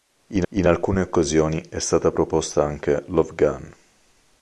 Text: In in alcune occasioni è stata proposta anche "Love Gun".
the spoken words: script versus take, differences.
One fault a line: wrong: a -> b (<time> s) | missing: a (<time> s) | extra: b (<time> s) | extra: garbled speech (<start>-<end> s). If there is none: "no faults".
no faults